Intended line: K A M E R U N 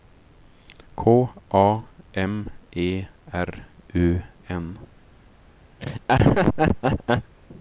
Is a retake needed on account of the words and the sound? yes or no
yes